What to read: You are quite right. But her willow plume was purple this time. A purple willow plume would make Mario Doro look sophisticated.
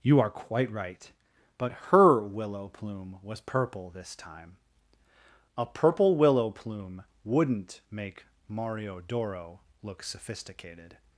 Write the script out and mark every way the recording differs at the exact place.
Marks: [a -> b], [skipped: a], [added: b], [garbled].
You are quite right. But her willow plume was purple this time. A purple willow plume [would -> wouldn't] make Mario Doro look sophisticated.